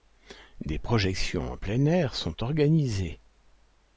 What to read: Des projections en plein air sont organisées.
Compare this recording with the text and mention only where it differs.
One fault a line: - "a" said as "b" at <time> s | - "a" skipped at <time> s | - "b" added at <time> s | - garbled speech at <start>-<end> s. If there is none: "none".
none